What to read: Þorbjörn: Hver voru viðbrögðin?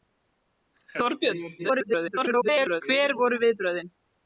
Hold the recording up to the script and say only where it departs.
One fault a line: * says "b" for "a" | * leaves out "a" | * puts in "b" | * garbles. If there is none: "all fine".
* garbles